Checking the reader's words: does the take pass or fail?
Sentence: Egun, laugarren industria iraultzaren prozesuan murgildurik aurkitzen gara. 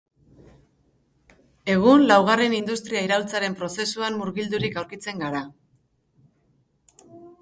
pass